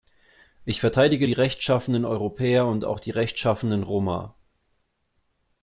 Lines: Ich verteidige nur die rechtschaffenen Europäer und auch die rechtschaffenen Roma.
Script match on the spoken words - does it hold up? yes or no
no